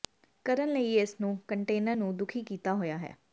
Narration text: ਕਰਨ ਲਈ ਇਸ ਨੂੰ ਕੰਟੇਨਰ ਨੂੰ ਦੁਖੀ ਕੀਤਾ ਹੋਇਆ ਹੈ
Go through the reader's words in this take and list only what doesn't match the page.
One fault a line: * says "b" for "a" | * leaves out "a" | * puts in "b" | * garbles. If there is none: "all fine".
all fine